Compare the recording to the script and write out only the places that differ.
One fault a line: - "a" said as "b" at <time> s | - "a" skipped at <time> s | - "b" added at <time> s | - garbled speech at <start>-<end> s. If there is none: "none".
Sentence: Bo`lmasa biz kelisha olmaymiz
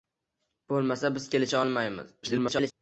- garbled speech at 2.2-2.7 s